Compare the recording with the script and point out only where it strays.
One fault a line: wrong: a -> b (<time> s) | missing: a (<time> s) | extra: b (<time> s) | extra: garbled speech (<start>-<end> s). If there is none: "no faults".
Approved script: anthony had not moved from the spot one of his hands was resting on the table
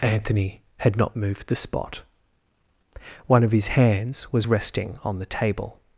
missing: from (1.5 s)